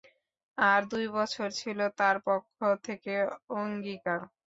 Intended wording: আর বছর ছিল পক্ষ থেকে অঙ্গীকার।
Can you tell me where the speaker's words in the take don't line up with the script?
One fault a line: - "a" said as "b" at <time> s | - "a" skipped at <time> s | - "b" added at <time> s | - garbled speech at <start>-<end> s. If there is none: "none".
- "দুই" added at 0.9 s
- "তার" added at 2.0 s